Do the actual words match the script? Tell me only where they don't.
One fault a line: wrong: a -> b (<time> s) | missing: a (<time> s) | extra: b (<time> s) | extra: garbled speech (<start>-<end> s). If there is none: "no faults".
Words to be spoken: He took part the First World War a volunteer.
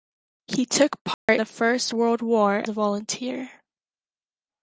no faults